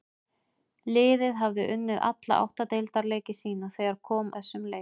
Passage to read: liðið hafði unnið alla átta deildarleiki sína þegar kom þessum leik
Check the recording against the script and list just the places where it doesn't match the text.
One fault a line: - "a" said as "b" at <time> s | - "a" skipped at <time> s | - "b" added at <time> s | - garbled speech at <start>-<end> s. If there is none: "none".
none